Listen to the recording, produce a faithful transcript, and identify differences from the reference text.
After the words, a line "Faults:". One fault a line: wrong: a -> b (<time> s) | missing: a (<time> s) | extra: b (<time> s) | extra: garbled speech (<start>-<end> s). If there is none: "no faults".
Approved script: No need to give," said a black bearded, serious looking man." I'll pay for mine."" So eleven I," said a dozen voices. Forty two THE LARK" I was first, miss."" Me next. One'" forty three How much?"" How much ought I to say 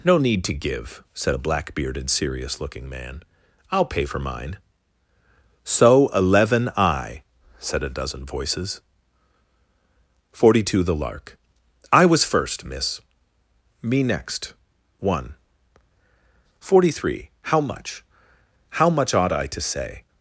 No need to give," said a black bearded, serious looking man." I'll pay for mine."" So eleven I," said a dozen voices. Forty two THE LARK" I was first, miss."" Me next. One'" forty three How much?"" How much ought I to say
Faults:
no faults